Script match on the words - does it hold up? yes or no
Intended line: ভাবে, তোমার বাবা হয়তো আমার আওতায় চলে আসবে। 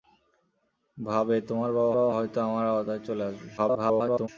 no